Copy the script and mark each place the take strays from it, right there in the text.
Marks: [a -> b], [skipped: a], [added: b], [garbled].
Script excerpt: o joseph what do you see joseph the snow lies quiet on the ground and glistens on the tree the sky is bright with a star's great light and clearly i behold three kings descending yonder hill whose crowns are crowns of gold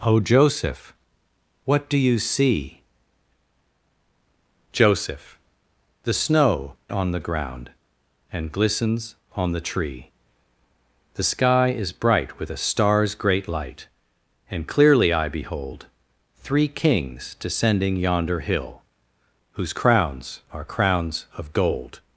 o joseph what do you see joseph the snow [skipped: lies quiet] on the ground and glistens on the tree the sky is bright with a star's great light and clearly i behold three kings descending yonder hill whose crowns are crowns of gold